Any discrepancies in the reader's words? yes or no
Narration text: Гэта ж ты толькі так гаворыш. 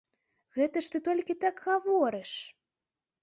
no